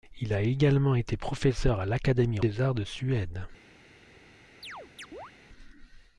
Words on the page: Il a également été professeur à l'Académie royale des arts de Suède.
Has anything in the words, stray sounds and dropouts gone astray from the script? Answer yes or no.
yes